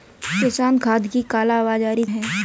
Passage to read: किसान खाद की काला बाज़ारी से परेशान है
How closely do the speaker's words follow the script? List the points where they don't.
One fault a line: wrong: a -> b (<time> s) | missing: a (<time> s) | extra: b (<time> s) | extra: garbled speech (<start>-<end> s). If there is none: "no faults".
missing: से परेशान (2.0 s)